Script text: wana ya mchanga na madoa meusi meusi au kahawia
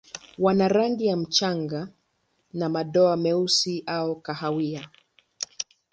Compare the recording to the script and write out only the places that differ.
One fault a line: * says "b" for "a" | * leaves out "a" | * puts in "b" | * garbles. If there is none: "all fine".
* puts in "rangi"
* leaves out "meusi"